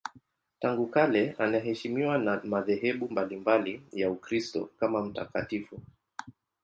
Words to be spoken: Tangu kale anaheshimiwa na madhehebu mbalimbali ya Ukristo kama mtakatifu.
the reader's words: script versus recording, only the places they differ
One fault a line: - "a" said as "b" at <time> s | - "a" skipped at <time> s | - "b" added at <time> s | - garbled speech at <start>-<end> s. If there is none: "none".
none